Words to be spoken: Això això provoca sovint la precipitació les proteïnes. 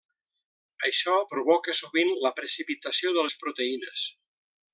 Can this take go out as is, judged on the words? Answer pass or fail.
fail